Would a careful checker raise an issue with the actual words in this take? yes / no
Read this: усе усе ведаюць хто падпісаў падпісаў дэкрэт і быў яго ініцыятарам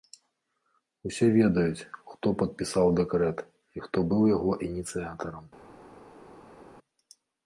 yes